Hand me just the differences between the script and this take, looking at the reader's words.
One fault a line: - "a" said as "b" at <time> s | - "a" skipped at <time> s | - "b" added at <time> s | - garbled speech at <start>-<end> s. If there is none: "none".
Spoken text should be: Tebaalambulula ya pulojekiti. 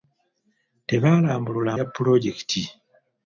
none